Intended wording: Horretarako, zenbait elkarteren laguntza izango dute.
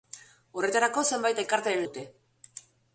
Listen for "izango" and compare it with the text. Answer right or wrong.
wrong